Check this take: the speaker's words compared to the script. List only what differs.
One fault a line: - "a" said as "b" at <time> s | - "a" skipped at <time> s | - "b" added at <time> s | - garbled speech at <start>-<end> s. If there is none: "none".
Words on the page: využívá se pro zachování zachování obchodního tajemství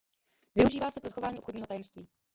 - "zachování" skipped at 1.4 s